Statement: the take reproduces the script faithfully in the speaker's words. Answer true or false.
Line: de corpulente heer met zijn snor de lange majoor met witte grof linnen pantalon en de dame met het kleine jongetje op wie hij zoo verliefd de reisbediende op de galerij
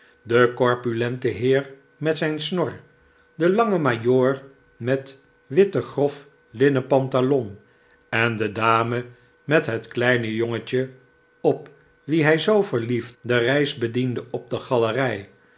true